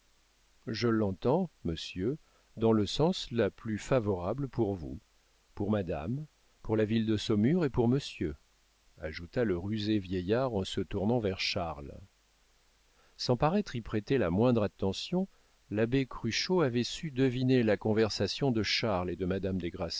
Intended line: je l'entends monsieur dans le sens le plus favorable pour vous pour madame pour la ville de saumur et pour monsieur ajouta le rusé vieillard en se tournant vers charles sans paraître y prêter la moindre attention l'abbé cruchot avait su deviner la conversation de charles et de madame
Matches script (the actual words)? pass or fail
pass